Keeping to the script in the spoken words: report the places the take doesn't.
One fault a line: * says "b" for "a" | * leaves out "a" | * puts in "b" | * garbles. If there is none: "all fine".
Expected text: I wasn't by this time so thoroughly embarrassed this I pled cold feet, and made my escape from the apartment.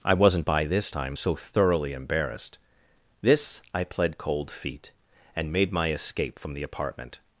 all fine